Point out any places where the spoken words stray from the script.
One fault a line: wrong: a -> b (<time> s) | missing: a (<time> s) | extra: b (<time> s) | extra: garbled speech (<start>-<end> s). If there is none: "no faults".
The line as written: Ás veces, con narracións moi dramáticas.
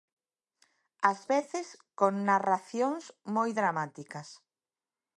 no faults